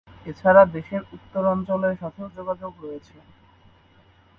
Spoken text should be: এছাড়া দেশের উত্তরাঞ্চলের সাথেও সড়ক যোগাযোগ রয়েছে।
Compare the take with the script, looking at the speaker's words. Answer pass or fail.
fail